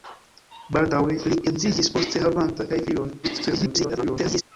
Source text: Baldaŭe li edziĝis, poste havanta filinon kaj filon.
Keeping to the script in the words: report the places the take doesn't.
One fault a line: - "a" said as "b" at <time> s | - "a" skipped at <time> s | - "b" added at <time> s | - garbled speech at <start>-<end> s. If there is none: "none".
- "filinon" skipped at 2.7 s
- garbled speech at 3.2-4.4 s